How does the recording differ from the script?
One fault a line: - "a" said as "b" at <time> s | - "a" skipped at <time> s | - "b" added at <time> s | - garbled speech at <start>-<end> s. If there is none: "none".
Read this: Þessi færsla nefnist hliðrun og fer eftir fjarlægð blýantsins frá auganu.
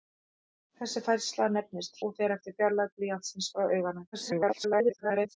- "hliðrun" skipped at 2.0 s
- garbled speech at 4.1-5.3 s